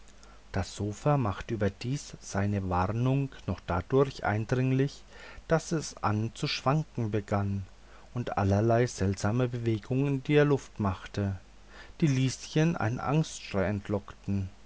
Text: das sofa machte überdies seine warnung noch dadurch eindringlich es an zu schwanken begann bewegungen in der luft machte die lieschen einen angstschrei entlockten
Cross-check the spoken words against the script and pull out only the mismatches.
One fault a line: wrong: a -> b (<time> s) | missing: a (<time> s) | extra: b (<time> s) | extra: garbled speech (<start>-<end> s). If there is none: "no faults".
extra: daß (5.5 s)
extra: und allerlei seltsame (8.2 s)